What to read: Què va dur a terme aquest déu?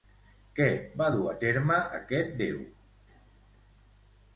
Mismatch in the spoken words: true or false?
false